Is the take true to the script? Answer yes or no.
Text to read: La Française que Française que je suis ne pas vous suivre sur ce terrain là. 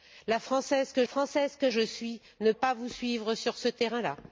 yes